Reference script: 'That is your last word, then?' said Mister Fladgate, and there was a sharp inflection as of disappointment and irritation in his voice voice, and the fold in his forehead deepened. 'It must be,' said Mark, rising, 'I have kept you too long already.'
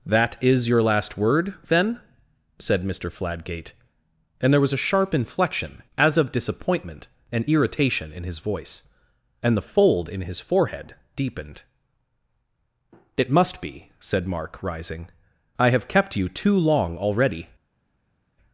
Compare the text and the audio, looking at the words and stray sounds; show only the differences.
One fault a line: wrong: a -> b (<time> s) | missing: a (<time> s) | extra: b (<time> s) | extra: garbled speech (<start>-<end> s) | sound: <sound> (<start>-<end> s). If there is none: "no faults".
missing: voice (8.9 s)